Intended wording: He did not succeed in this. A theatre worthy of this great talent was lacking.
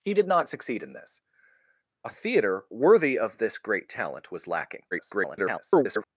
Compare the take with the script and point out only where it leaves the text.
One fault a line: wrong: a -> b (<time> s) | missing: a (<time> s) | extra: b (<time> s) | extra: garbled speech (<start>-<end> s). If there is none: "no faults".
extra: garbled speech (4.9-6.0 s)